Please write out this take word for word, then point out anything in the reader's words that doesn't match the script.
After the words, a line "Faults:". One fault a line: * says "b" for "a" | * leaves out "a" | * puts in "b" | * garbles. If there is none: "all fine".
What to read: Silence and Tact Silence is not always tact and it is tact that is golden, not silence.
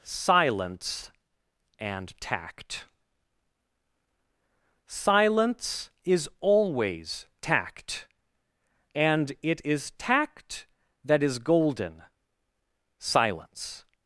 Silence and Tact Silence is always tact and it is tact that is golden, silence.
Faults:
* leaves out "not"
* leaves out "not"